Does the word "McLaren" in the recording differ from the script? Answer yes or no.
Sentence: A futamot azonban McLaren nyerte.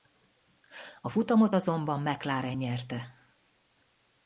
no